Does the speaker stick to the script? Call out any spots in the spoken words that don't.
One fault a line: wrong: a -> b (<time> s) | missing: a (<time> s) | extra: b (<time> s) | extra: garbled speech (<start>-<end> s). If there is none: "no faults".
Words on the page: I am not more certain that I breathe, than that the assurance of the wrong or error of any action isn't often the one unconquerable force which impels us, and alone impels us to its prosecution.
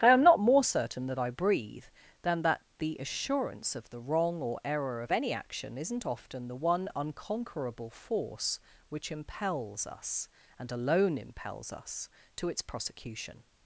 no faults